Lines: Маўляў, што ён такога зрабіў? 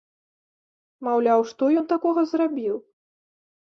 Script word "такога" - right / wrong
right